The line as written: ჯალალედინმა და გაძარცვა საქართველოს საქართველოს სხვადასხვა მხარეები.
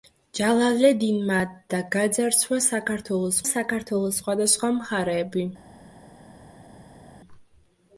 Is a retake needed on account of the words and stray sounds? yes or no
no